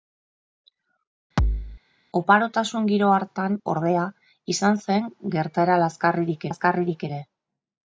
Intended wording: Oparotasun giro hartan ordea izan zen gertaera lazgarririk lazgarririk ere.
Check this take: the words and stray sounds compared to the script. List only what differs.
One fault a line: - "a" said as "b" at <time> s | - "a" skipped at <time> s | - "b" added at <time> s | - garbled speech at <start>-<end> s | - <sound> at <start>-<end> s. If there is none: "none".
- thud at 1.4-1.8 s